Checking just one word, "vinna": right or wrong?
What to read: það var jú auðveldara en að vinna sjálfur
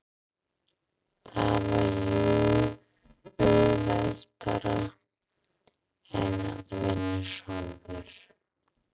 right